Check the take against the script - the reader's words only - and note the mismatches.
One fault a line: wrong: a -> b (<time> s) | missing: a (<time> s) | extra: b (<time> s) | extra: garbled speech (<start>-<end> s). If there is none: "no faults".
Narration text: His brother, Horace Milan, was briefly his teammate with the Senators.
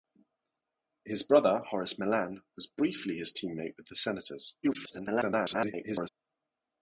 extra: garbled speech (4.6-6.1 s)